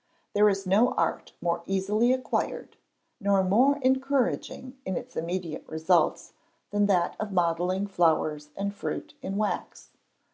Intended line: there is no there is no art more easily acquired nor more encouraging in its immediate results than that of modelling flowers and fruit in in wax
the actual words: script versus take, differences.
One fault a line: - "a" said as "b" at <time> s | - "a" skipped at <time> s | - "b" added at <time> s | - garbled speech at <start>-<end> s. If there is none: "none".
- "there is no" skipped at 0.9 s
- "in" skipped at 9.4 s